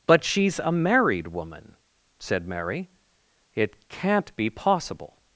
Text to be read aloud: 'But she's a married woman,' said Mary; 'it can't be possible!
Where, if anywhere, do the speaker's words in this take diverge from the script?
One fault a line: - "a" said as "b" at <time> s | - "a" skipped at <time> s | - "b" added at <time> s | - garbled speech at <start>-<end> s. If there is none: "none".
none